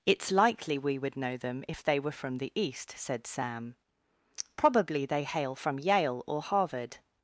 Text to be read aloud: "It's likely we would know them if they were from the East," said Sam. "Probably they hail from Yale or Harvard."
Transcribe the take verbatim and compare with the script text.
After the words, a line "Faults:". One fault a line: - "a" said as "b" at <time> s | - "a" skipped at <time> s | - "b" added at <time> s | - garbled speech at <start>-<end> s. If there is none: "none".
"It's likely we would know them if they were from the East," said Sam. "Probably they hail from Yale or Harvard."
Faults:
none